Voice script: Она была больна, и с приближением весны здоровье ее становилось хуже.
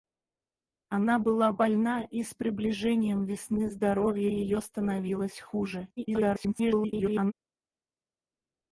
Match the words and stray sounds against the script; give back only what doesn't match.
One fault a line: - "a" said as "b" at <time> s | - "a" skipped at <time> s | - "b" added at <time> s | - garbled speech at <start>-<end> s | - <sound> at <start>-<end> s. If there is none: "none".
- garbled speech at 6.0-7.3 s